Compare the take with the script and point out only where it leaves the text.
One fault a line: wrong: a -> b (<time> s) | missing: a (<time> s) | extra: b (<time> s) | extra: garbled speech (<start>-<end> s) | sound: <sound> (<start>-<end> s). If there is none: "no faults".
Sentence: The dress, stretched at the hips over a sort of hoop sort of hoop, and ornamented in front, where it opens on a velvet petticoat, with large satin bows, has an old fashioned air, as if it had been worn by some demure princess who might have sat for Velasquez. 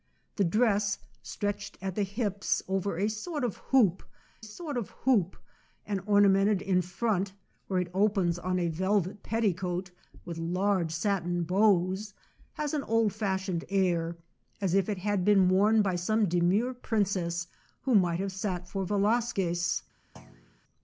sound: thud (20.2-20.6 s)